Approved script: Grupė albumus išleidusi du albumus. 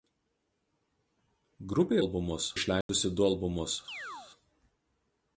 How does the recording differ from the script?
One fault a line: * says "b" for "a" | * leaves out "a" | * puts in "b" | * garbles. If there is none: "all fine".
all fine